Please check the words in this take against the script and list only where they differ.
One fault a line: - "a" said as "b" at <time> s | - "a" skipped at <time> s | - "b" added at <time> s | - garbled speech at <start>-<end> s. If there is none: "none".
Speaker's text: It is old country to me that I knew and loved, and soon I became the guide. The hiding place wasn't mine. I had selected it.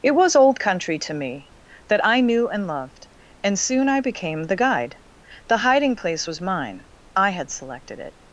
- "is" said as "was" at 0.1 s
- "wasn't" said as "was" at 6.2 s